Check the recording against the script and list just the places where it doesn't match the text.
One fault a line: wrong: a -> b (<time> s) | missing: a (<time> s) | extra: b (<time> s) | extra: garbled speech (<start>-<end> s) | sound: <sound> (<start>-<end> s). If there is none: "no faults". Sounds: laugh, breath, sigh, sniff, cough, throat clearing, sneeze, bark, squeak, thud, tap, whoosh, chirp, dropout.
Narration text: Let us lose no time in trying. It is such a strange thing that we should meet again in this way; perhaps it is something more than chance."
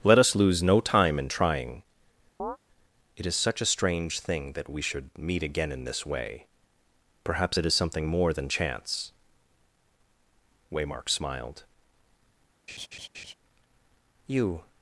sound: chirp (2.4-2.6 s)
extra: Waymark smiled You (10.7 s)
sound: laugh (12.7-13.3 s)